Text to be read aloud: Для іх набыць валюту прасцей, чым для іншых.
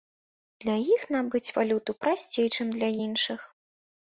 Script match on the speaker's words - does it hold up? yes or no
yes